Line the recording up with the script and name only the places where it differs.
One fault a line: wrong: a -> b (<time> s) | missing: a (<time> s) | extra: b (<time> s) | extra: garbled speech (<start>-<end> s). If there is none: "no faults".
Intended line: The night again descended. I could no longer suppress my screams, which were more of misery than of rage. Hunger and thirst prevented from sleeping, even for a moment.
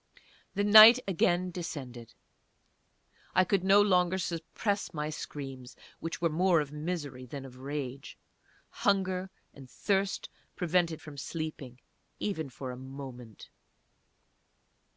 no faults